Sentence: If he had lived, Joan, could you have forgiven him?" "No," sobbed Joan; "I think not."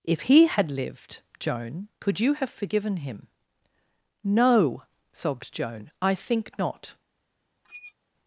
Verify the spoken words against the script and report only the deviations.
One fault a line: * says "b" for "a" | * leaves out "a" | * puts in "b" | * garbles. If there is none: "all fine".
all fine